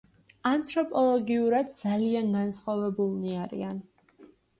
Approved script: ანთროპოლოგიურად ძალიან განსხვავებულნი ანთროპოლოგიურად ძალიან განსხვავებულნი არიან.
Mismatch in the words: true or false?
true